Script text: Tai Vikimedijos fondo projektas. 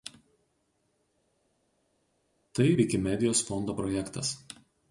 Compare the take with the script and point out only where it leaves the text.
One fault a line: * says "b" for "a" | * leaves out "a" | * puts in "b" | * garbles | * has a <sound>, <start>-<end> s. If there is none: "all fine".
all fine